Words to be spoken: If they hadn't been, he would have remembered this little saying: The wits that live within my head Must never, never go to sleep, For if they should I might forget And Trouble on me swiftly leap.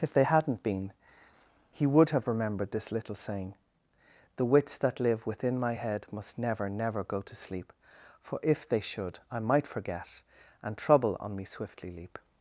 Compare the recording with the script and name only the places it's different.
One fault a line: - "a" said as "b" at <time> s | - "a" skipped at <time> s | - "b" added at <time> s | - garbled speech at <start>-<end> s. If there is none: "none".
none